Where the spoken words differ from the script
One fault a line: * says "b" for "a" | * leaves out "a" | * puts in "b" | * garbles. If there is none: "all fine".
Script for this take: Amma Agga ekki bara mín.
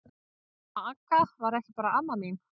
* puts in "var"
* puts in "amma"